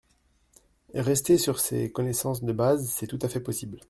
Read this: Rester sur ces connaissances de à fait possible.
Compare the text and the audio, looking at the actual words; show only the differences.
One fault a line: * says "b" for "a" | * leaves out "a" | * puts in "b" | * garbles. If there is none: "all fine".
* puts in "base c'est tout"